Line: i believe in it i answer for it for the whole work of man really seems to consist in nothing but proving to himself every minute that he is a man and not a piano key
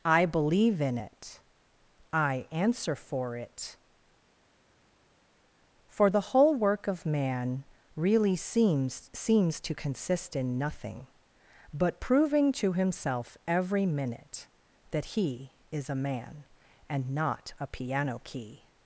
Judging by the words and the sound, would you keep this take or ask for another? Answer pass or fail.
fail